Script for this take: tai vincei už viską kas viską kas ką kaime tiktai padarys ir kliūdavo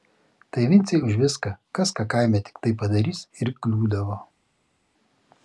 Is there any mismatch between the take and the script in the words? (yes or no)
yes